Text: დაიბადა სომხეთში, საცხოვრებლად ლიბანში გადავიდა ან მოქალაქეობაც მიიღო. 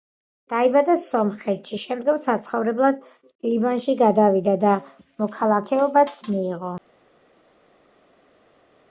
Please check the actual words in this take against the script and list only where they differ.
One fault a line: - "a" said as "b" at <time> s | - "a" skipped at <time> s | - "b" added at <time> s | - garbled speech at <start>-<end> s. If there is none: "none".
- "შემდგომ" added at 1.8 s
- "ან" said as "და" at 4.7 s